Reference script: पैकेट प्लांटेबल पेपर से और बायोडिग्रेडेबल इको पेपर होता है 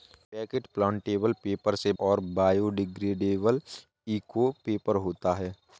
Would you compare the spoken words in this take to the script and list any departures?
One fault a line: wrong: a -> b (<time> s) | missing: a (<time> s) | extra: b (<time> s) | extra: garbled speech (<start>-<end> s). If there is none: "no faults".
no faults